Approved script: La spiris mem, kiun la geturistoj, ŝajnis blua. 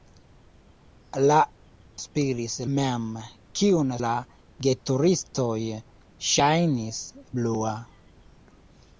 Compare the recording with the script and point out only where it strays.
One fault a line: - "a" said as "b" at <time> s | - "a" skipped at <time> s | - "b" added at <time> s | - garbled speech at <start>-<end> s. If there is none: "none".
none